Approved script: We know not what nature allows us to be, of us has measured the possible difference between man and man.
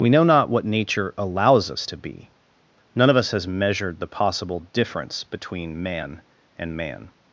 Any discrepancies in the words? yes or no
yes